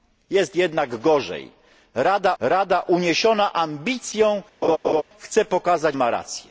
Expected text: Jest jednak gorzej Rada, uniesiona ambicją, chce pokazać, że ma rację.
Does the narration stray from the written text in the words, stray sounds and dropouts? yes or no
yes